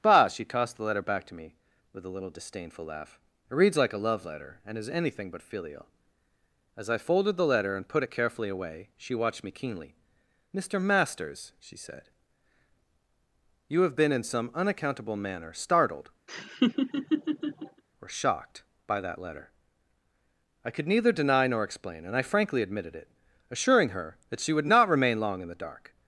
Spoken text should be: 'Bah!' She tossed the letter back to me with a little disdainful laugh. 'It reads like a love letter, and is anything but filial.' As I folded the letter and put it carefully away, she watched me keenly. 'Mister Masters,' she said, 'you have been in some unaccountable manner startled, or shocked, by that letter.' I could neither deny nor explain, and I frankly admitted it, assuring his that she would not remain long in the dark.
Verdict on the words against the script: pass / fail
fail